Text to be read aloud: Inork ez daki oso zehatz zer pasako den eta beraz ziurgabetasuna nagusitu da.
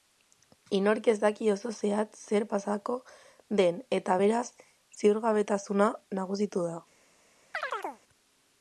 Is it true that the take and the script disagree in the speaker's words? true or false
false